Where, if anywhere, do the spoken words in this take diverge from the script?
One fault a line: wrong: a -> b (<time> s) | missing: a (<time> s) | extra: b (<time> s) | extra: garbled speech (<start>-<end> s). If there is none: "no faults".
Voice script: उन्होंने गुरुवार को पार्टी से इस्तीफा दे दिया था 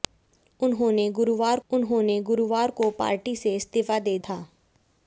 extra: उन्होंने गुरुवार (1.7 s)
missing: दिया (4.2 s)